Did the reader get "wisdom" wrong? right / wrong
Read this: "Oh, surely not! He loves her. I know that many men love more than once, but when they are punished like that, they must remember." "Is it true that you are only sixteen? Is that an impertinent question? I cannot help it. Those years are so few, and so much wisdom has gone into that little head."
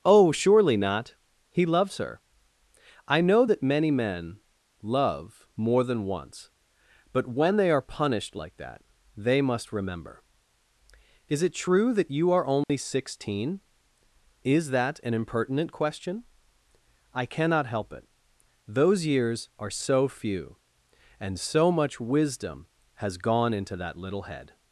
right